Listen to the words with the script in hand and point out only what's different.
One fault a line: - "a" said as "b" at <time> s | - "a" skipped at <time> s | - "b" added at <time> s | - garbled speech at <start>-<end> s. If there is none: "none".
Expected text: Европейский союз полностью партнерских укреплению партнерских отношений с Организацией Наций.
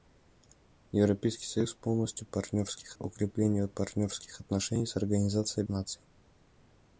none